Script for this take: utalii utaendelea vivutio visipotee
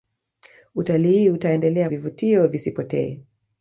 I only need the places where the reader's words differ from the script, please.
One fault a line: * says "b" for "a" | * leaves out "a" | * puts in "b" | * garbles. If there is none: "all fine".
all fine